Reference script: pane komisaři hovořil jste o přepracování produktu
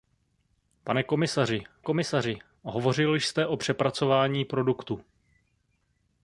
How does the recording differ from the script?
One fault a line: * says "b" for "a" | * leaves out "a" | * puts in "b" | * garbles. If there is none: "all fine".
* puts in "komisaři"